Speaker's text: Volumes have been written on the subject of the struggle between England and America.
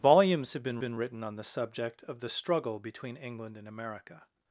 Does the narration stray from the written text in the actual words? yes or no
yes